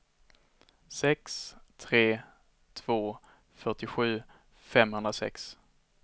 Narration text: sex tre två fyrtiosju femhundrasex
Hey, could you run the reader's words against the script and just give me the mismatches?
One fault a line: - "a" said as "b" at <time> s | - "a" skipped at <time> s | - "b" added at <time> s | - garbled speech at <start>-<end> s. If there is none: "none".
none